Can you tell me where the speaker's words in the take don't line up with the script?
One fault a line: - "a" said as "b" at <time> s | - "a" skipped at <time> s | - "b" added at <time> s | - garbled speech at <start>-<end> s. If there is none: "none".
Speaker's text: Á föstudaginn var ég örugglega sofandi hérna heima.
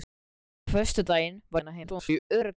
- "ég örugglega sofandi" skipped at 1.6 s
- garbled speech at 1.8-2.6 s